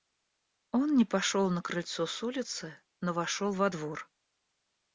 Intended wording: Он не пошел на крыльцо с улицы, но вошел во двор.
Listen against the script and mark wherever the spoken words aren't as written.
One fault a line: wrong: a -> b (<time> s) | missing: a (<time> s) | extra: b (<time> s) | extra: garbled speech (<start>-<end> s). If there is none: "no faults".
no faults